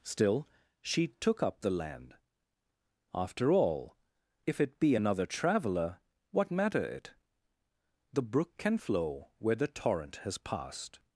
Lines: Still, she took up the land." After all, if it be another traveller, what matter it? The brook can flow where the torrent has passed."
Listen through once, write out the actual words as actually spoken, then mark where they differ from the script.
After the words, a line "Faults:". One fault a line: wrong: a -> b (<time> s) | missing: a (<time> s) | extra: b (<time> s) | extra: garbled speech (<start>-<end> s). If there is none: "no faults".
Still, she took up the land." After all, if it be another traveller, what matter it? The brook can flow where the torrent has passed."
Faults:
no faults